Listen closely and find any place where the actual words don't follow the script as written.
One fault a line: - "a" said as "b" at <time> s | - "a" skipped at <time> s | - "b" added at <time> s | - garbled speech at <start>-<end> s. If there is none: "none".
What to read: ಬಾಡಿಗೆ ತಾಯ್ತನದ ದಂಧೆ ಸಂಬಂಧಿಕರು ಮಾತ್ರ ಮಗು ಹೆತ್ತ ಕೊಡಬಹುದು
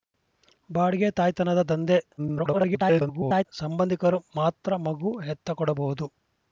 - garbled speech at 2.2-3.5 s